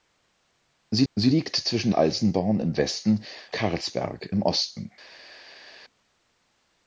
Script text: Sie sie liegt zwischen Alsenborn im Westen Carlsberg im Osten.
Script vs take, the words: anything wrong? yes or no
no